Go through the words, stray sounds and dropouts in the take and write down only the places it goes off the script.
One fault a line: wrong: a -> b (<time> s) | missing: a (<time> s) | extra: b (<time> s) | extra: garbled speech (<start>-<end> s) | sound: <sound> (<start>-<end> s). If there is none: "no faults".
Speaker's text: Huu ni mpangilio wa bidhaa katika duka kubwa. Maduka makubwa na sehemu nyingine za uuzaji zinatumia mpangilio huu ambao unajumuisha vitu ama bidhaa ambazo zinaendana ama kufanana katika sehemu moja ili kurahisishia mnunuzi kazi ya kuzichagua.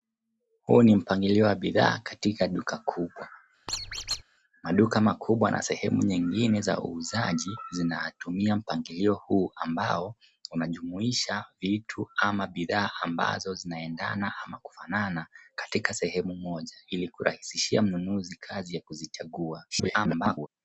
sound: squeak (3.7-4.2 s)
extra: garbled speech (19.7-20.5 s)